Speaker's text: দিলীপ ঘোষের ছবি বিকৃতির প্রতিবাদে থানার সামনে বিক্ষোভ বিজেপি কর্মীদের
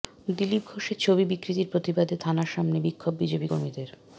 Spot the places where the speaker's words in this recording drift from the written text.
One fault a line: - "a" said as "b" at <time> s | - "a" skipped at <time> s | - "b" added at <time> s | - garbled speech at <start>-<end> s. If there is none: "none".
none